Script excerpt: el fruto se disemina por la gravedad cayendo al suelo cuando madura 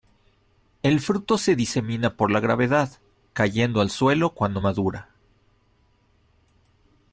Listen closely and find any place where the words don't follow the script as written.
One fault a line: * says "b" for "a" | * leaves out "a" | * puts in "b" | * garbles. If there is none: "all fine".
all fine